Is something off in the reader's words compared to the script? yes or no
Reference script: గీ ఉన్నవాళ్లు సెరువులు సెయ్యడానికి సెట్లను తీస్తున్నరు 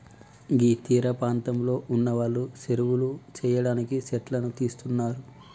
yes